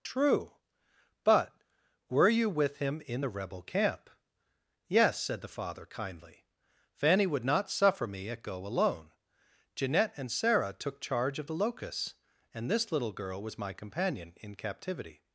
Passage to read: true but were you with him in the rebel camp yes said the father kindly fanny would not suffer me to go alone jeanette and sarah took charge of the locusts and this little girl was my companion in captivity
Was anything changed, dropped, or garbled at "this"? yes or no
no